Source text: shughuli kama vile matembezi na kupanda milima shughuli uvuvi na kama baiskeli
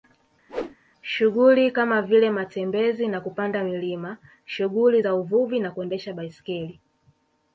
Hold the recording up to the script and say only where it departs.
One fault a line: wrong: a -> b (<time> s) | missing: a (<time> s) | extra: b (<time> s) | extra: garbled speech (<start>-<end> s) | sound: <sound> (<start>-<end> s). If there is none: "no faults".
sound: whoosh (0.5-0.8 s)
extra: za (5.0 s)
wrong: kama -> kuendesha (5.7 s)